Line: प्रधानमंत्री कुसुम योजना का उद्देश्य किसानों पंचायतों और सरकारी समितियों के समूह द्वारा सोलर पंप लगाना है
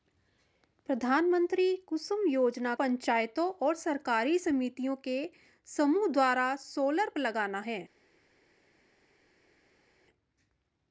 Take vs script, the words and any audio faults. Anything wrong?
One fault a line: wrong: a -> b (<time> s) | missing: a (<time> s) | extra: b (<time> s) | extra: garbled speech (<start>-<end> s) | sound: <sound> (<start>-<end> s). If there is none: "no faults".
missing: का उद्देश्य किसानों (2.7 s)
missing: पंप (7.1 s)